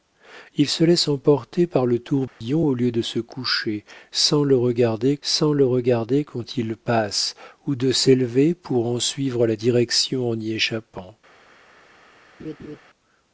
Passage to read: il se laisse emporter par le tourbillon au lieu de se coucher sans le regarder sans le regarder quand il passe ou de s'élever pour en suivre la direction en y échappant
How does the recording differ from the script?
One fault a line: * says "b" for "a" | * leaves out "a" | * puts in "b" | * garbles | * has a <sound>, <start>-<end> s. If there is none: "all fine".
* has a dropout, 2.3-2.4 s
* has a laugh, 12.4-12.8 s